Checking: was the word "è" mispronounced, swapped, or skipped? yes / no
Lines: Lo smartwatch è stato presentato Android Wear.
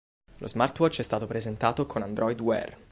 no